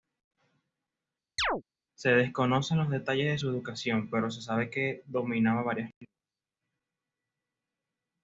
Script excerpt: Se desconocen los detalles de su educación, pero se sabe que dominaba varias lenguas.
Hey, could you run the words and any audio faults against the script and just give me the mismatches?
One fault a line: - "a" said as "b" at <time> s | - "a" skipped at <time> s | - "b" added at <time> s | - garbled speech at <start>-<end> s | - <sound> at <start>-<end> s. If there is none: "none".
- chirp at 1.4-1.6 s